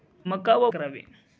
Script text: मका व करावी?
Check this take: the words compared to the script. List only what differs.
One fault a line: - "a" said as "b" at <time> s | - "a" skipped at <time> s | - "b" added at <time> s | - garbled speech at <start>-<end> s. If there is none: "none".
none